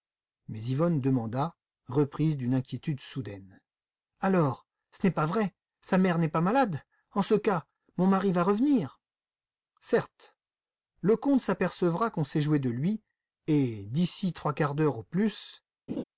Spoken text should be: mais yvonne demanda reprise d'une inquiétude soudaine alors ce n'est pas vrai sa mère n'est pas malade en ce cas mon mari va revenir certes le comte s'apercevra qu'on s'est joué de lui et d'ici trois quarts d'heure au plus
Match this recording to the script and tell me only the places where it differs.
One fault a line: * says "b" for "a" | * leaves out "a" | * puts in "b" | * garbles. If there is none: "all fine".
all fine